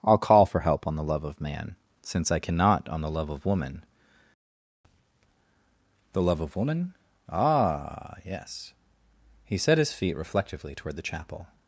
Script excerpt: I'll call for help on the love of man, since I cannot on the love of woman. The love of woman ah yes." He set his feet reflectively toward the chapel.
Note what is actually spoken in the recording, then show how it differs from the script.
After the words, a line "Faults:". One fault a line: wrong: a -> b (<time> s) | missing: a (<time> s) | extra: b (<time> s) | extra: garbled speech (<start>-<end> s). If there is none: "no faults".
I'll call for help on the love of man, since I cannot on the love of woman. The love of woman ah yes." He set his feet reflectively toward the chapel.
Faults:
no faults